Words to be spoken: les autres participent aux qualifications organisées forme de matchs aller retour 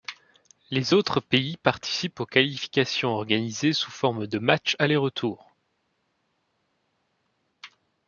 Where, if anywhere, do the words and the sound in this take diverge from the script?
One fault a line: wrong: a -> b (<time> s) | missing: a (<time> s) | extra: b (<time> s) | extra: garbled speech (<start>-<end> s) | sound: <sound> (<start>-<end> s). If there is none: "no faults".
extra: pays (1.2 s)
extra: sous (3.7 s)